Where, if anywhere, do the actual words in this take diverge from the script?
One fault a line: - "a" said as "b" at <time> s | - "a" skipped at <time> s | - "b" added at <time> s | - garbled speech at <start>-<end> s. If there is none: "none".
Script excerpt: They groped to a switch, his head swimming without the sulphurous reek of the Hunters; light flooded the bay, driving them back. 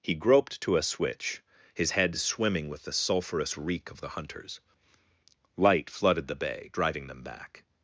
- "They" said as "He" at 0.0 s
- "without" said as "with" at 2.7 s